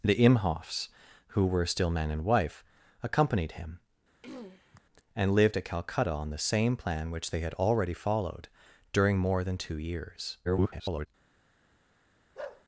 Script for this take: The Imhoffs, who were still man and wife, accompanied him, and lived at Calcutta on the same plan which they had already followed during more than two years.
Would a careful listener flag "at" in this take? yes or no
no